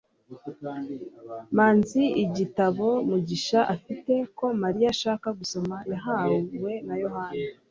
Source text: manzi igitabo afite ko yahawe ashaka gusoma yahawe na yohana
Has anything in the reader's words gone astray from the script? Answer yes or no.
yes